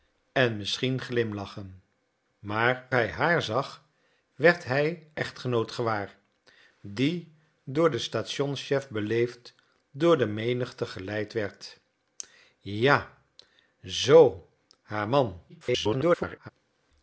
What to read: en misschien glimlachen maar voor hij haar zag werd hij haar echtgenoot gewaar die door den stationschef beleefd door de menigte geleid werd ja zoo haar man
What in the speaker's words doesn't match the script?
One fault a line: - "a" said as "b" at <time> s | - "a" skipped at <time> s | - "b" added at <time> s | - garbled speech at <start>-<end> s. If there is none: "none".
- "voor" skipped at 2.9 s
- "haar" skipped at 5.1 s
- garbled speech at 15.5-16.5 s